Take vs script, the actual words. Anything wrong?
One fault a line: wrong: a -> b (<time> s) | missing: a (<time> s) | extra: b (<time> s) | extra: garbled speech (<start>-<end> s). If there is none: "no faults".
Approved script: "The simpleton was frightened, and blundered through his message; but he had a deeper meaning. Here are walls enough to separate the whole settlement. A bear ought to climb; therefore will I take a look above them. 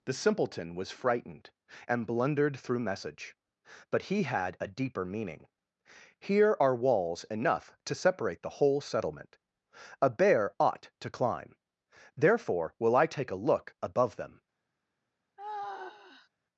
missing: his (2.8 s)